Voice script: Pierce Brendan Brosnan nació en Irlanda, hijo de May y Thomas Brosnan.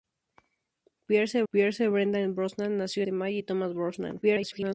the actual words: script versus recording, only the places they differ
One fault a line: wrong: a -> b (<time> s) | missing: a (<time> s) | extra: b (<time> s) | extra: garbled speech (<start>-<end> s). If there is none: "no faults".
extra: pierce (1.5 s)
missing: en Irlanda hijo (3.0 s)
extra: garbled speech (4.2-4.7 s)